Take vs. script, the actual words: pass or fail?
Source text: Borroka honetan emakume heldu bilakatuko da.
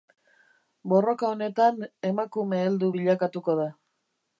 pass